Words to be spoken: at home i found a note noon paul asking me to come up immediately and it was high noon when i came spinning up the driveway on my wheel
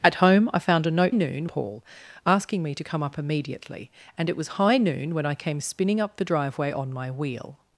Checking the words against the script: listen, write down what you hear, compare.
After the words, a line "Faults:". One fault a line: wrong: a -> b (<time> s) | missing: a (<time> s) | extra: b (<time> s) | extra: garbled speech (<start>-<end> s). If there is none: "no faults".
at home i found a note noon paul asking me to come up immediately and it was high noon when i came spinning up the driveway on my wheel
Faults:
no faults